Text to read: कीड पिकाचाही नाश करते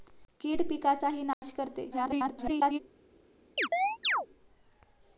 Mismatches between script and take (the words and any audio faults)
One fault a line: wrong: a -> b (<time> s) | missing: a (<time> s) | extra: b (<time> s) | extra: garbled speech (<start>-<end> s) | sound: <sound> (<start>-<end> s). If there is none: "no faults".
sound: dropout (1.3-1.4 s)
extra: garbled speech (1.9-2.8 s)
sound: chirp (3.6-4.3 s)